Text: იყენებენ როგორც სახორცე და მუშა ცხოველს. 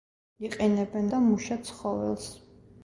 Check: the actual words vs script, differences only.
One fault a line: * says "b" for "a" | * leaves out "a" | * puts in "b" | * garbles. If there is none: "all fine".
* leaves out "როგორც სახორცე"